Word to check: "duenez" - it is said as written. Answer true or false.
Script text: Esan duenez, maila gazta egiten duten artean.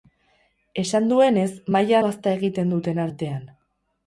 true